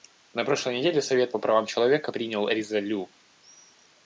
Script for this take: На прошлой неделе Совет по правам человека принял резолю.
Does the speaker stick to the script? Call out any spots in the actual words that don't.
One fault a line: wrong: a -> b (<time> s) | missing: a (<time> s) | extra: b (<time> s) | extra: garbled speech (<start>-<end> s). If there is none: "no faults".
no faults